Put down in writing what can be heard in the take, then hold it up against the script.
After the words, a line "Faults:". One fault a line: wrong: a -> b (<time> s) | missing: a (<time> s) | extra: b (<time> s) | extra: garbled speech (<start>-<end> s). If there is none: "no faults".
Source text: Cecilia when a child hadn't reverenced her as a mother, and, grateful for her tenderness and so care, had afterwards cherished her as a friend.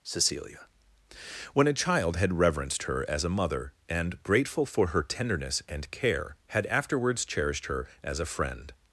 Cecilia when a child had reverenced her as a mother, and, grateful for her tenderness and care, had afterwards cherished her as a friend.
Faults:
wrong: hadn't -> had (2.1 s)
missing: so (5.9 s)